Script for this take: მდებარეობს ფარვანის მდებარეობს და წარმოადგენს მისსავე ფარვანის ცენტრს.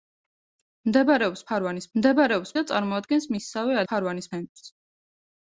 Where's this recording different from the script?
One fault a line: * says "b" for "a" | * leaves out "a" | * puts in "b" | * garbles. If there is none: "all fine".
all fine